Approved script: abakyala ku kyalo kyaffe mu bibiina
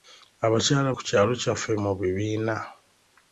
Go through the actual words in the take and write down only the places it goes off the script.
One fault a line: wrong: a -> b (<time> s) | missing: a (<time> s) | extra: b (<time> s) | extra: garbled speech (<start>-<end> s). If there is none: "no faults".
no faults